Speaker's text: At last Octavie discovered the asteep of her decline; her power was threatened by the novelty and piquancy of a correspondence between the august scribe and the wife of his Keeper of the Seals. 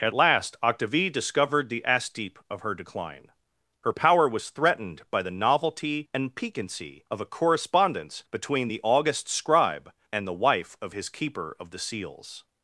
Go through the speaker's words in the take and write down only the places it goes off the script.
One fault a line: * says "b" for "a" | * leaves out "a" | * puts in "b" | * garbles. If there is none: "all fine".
all fine